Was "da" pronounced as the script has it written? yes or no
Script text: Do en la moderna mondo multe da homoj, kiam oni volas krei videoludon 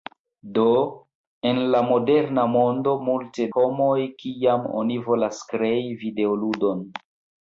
no